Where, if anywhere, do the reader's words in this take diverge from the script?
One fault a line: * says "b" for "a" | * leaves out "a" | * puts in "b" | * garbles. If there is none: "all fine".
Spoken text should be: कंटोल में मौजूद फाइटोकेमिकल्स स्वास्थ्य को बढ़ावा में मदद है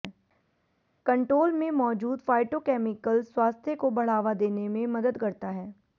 * puts in "देने"
* puts in "करता"